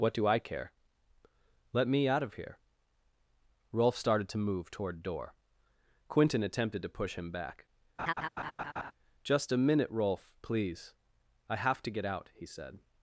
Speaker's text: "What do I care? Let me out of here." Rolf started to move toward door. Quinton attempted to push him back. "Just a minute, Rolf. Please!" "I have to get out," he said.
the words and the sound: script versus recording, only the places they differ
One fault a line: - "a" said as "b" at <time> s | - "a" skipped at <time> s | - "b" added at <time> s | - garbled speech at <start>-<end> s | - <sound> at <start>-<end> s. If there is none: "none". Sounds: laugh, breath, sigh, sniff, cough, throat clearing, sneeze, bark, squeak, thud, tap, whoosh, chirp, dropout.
- laugh at 8.0-8.9 s